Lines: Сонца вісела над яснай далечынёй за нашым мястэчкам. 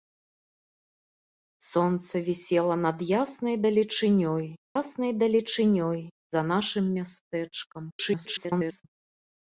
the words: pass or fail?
fail